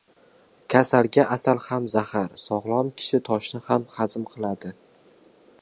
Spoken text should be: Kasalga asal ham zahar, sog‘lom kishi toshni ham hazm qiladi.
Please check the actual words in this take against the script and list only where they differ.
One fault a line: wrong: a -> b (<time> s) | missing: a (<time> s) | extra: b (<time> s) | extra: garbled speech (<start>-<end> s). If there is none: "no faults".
no faults